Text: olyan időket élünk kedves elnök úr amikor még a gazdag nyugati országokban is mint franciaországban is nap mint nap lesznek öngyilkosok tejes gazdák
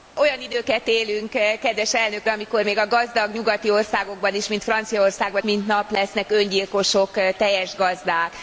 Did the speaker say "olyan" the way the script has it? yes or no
yes